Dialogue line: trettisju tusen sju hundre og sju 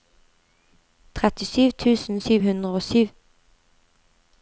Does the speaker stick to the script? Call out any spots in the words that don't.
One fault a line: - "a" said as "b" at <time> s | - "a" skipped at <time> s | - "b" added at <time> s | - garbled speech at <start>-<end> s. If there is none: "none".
none